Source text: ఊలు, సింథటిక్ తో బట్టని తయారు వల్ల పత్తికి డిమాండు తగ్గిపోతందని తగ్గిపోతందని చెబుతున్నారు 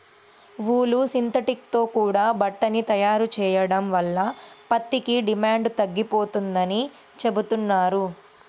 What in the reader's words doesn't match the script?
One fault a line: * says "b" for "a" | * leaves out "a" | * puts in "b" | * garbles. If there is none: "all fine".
* puts in "కూడా"
* puts in "చెయ్యడం"
* leaves out "తగ్గిపోతందని"